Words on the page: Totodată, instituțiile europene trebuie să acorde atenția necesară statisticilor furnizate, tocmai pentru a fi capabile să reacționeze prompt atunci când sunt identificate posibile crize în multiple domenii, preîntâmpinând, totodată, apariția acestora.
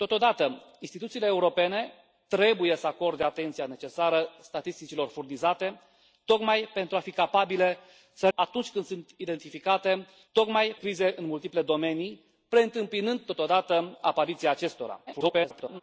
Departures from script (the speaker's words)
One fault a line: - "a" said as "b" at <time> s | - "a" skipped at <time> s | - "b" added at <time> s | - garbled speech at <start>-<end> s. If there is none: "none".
- "reacționeze prompt" skipped at 8.3 s
- "posibile" said as "tocmai" at 10.3 s
- garbled speech at 15.1-15.8 s